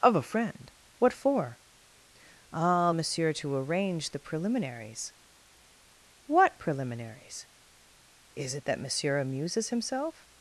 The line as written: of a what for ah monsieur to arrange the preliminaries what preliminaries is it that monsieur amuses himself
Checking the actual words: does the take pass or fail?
fail